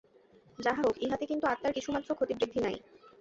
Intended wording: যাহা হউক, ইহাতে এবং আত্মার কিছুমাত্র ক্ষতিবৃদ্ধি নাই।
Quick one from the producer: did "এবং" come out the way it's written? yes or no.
no